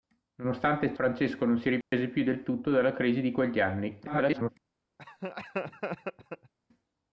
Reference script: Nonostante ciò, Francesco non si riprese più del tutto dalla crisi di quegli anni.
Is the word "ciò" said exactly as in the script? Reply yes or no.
no